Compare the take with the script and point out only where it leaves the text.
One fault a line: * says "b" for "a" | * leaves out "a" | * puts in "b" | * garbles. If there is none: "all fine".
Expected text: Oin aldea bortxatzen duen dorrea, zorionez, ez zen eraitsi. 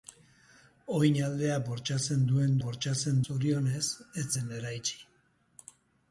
* says "bortxatzen" for "dorrea"